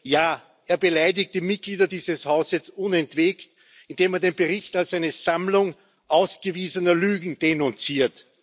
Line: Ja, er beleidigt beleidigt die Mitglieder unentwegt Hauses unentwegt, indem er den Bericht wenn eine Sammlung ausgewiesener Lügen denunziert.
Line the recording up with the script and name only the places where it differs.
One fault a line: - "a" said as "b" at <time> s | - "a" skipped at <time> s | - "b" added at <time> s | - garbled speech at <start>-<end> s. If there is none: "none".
- "beleidigt" skipped at 1.4 s
- "unentwegt" said as "dieses" at 1.8 s
- "wenn" said as "als" at 4.8 s